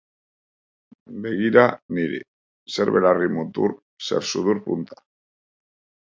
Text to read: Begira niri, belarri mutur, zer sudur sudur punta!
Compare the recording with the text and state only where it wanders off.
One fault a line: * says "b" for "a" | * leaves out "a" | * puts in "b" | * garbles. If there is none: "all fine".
* puts in "zer"
* leaves out "sudur"